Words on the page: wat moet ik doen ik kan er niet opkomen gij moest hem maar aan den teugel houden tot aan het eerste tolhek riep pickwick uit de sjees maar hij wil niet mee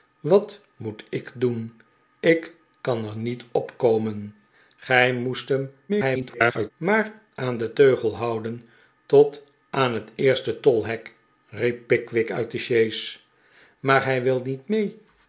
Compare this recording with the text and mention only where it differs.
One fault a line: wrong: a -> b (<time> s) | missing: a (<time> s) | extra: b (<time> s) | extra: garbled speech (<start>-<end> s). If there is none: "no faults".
extra: garbled speech (5.9-6.7 s)